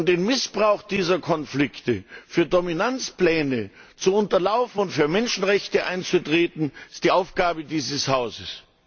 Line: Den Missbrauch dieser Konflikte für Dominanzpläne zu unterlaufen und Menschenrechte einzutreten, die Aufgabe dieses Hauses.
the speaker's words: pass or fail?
fail